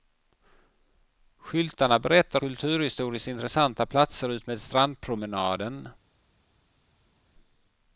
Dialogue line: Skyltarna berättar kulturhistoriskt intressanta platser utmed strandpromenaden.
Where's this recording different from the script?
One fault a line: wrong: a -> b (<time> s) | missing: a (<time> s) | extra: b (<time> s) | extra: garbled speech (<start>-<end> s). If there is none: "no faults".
no faults